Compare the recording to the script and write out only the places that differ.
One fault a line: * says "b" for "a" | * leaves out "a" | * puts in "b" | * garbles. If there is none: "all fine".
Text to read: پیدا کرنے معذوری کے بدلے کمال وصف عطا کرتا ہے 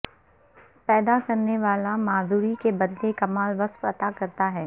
* puts in "والا"